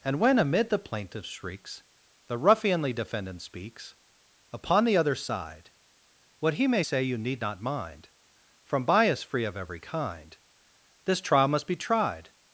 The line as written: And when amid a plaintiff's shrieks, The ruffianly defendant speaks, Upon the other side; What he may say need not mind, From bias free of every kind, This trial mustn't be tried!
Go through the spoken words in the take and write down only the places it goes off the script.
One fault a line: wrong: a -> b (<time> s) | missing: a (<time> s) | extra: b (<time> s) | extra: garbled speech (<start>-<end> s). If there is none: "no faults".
wrong: a -> the (0.7 s)
extra: you (7.0 s)
wrong: mustn't -> must (11.5 s)